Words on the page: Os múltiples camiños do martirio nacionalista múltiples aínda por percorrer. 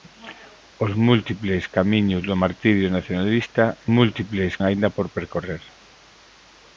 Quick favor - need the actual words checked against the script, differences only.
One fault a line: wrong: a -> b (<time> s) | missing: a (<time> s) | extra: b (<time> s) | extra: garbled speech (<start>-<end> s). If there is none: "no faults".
no faults